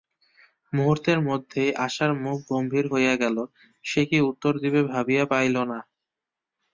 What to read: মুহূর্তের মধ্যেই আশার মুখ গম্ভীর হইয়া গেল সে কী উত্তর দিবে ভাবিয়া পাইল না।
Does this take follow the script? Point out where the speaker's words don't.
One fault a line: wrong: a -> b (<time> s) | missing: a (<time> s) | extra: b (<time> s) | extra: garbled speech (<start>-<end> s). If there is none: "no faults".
no faults